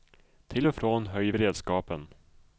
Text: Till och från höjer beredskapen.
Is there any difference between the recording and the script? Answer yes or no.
no